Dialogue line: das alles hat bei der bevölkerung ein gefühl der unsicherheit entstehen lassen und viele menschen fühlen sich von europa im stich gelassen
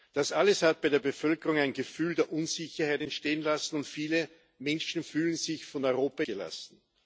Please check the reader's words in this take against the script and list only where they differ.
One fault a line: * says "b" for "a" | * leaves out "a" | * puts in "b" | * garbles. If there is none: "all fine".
* leaves out "im stich"